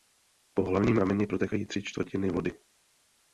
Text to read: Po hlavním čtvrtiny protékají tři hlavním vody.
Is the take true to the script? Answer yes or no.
no